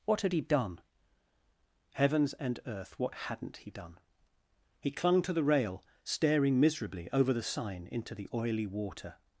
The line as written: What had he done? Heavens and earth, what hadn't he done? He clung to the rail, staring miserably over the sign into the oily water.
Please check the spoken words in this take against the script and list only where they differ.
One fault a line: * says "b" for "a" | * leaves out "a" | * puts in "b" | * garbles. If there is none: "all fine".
all fine